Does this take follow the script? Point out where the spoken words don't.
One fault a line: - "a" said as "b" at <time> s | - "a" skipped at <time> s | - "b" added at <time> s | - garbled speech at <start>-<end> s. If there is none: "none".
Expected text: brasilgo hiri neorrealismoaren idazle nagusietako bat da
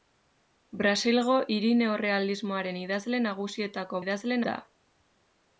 - "bat" said as "idazle" at 4.0 s